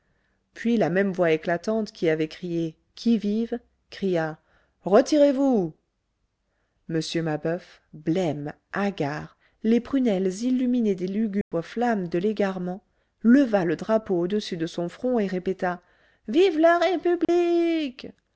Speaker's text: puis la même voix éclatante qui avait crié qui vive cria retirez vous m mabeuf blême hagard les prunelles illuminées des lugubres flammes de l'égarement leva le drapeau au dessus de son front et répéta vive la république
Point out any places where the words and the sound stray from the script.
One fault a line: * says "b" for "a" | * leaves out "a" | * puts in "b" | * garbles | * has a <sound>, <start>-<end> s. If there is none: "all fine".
* has a dropout, 11.4-11.5 s
* has a dropout, 17.2-17.3 s